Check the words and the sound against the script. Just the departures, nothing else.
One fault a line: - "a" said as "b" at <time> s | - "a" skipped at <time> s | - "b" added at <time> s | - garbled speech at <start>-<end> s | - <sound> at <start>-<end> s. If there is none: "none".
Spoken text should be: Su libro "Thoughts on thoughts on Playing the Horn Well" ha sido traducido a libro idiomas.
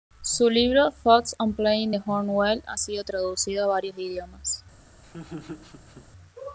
- "thoughts on" skipped at 1.5 s
- "libro" said as "varios" at 3.7 s
- laugh at 5.0-6.1 s